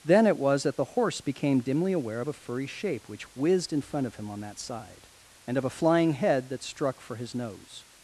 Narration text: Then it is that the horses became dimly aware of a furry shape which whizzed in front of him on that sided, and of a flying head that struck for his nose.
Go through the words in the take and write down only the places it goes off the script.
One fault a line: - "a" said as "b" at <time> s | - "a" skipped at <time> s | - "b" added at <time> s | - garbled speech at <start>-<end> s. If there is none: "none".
- "is" said as "was" at 0.4 s
- "horses" said as "horse" at 0.9 s
- "sided" said as "side" at 4.6 s